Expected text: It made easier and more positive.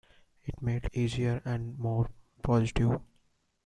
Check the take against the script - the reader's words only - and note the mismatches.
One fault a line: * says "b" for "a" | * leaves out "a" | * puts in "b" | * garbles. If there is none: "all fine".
all fine